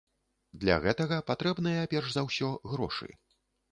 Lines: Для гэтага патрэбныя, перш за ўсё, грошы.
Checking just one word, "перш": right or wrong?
right